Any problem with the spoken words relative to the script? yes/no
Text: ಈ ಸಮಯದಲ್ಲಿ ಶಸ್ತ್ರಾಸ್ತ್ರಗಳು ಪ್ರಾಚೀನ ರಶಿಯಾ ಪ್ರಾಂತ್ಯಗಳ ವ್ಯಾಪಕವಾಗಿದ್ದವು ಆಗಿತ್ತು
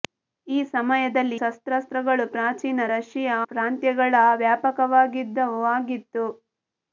no